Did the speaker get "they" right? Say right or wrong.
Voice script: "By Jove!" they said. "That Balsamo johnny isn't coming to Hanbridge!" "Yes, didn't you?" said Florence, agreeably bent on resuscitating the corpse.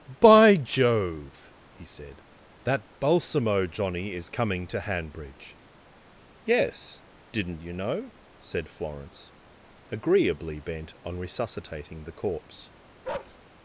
wrong